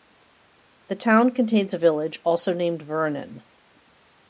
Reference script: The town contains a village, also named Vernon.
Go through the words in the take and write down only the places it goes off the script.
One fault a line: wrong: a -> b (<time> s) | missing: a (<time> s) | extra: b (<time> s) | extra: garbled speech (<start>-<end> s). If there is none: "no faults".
no faults